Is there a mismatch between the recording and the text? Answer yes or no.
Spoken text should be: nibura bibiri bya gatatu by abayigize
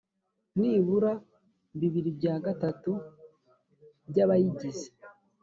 no